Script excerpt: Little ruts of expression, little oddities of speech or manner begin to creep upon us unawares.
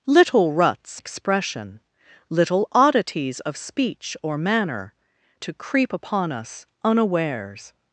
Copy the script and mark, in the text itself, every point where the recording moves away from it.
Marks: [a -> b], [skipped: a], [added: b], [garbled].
Little ruts [skipped: of] expression, little oddities of speech or manner [skipped: begin] to creep upon us unawares.